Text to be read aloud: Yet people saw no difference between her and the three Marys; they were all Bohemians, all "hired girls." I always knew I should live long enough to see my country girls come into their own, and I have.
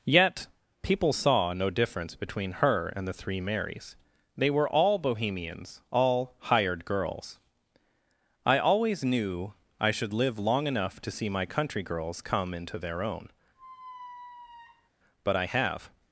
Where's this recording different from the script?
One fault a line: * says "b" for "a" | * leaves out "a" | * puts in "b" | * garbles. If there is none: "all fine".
* says "but" for "and"